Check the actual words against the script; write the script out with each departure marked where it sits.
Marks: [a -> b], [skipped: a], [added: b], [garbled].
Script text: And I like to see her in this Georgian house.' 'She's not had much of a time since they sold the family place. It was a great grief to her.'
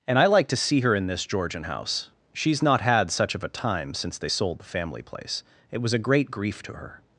And I like to see her in this Georgian house.' 'She's not had [much -> such] of a time since they sold the family place. It was a great grief to her.'